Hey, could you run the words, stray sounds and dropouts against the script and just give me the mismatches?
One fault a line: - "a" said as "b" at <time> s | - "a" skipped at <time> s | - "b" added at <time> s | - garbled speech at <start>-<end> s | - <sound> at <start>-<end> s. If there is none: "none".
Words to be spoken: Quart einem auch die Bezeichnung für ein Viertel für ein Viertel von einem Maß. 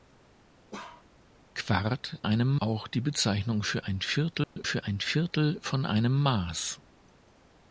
- bark at 0.7-1.1 s
- dropout at 4.4-4.6 s